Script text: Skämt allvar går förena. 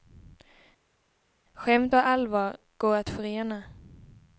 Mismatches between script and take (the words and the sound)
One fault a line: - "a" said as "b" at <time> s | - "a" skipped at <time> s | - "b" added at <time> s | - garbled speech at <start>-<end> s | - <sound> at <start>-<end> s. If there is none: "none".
- "och" added at 1.9 s
- "att" added at 3.0 s